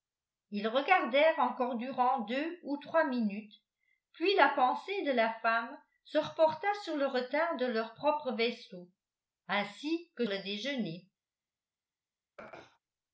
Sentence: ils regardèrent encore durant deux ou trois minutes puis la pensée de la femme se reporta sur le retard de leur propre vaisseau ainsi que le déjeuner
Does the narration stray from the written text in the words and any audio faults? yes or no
yes